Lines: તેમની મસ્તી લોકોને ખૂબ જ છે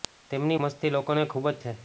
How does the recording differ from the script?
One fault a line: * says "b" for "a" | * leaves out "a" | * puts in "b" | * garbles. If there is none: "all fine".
all fine